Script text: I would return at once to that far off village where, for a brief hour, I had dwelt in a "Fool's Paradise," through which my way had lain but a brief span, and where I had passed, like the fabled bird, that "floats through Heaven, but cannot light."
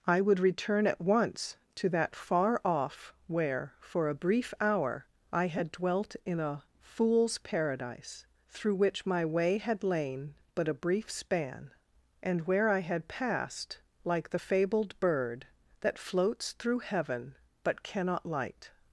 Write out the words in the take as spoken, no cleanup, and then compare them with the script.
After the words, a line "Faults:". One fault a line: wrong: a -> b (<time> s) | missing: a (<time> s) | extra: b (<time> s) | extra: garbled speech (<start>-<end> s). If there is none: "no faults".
I would return at once to that far off where, for a brief hour, I had dwelt in a "Fool's Paradise," through which my way had lain but a brief span, and where I had passed, like the fabled bird, that "floats through Heaven, but cannot light."
Faults:
missing: village (3.1 s)